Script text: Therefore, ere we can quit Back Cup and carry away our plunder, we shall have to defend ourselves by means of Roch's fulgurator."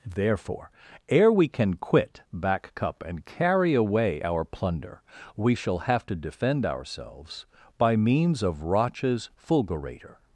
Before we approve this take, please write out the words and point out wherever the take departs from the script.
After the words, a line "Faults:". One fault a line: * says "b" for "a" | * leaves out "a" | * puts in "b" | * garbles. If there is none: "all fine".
Therefore, ere we can quit Back Cup and carry away our plunder, we shall have to defend ourselves by means of Roch's fulgurator."
Faults:
all fine